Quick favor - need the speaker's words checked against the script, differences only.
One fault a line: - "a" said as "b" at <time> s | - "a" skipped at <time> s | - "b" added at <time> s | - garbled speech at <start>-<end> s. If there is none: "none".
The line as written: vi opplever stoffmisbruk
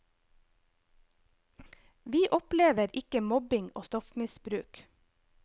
- "ikke mobbing og" added at 2.9 s